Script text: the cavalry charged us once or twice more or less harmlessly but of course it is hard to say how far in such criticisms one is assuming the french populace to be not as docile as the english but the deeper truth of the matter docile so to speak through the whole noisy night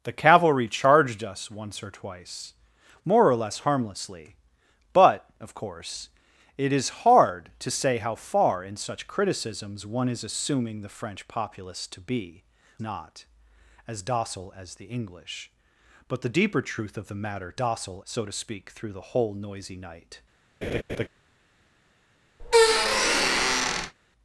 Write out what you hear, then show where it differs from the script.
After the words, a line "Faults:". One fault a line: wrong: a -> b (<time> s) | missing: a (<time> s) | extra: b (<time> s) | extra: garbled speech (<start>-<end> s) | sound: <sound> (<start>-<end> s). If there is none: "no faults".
the cavalry charged us once or twice more or less harmlessly but of course it is hard to say how far in such criticisms one is assuming the french populace to be not as docile as the english but the deeper truth of the matter docile so to speak through the whole noisy night
Faults:
sound: laugh (20.6-21.1 s)
sound: squeak (22.4-23.9 s)